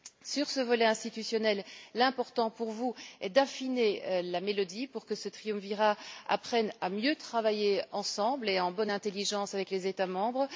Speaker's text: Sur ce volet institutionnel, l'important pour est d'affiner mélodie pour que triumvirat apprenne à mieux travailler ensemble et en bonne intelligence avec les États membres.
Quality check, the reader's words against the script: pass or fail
fail